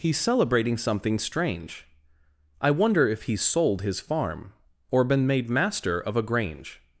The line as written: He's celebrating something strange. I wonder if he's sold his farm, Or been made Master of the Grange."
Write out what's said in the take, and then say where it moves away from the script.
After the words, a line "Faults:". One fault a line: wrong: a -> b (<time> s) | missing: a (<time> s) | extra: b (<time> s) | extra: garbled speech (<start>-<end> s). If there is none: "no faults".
He's celebrating something strange. I wonder if he's sold his farm, Or been made Master of a Grange."
Faults:
wrong: the -> a (6.2 s)